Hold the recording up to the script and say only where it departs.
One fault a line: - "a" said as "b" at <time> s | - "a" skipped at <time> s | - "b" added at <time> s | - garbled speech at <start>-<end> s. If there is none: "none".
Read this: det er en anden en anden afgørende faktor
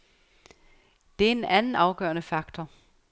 - "en anden" skipped at 1.7 s